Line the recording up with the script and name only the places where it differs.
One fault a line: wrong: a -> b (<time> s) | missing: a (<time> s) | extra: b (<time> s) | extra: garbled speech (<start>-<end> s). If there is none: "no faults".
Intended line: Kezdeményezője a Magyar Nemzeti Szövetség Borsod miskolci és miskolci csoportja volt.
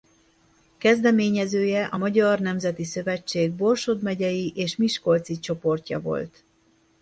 wrong: miskolci -> megyei (4.0 s)